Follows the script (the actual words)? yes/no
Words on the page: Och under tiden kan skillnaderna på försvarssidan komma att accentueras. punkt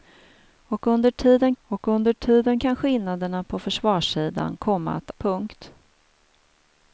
no